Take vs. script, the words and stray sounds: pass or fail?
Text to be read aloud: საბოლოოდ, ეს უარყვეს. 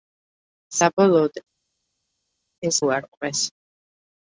pass